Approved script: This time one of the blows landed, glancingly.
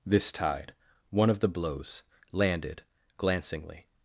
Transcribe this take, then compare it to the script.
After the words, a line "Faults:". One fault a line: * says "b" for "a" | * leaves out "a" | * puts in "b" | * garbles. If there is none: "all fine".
This tide one of the blows landed, glancingly.
Faults:
* says "tide" for "time"